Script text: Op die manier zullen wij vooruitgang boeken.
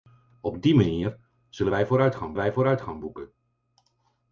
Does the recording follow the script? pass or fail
fail